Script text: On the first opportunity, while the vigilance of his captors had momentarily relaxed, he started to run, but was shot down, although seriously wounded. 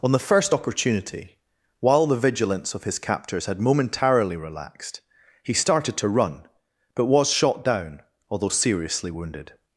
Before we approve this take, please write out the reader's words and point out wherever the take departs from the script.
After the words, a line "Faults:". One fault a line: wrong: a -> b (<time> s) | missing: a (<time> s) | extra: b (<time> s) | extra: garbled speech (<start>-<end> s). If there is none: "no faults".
On the first opportunity, while the vigilance of his captors had momentarily relaxed, he started to run, but was shot down, although seriously wounded.
Faults:
no faults